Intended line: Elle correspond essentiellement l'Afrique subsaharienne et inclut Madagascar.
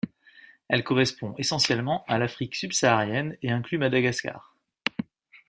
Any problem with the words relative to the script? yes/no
yes